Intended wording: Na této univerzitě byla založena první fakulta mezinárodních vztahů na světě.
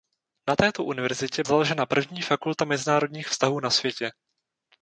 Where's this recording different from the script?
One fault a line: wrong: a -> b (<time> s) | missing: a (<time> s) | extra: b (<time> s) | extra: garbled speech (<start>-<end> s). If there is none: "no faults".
missing: byla (1.4 s)